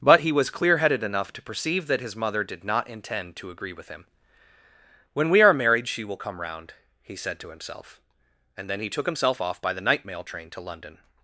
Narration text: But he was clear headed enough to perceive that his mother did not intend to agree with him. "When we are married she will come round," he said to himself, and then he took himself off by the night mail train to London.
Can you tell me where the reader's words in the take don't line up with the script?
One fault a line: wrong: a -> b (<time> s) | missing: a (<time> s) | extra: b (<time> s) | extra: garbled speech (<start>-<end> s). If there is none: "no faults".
no faults